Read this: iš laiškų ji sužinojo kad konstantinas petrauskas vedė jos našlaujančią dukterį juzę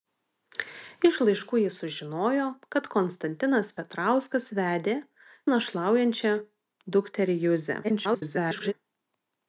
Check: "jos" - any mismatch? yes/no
yes